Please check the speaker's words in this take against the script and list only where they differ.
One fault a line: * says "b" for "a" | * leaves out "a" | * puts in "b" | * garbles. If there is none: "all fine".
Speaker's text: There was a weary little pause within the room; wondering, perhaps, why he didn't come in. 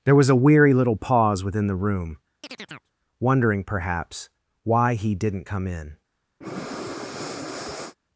all fine